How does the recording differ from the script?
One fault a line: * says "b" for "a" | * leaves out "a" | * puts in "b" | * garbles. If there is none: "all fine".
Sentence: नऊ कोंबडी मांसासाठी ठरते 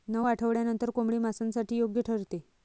* puts in "आठवड्यांनंतर"
* puts in "योग्य"